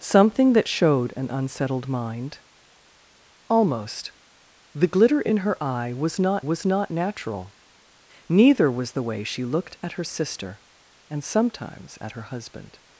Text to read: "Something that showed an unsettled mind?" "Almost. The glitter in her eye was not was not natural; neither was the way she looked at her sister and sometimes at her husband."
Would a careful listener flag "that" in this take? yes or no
no